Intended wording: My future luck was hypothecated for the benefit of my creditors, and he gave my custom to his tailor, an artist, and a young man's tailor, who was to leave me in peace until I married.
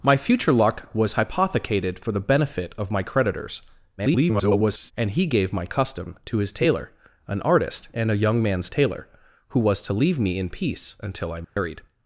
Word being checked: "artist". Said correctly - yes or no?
yes